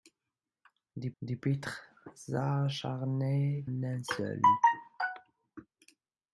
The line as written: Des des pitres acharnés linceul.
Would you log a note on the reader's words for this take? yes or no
no